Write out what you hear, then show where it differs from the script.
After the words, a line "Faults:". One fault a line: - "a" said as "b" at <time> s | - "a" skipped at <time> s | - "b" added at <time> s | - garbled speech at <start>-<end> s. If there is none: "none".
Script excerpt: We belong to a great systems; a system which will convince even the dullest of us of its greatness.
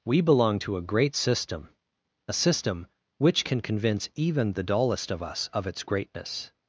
We belong to a great system; a system which can convince even the dullest of us of its greatness.
Faults:
- "systems" said as "system" at 1.1 s
- "will" said as "can" at 3.4 s